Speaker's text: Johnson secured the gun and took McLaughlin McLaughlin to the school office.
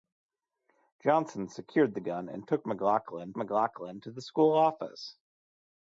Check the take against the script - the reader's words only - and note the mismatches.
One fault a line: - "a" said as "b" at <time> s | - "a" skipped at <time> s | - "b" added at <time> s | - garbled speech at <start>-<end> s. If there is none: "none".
none